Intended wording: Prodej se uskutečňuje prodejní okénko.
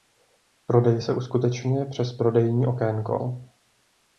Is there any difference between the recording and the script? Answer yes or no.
yes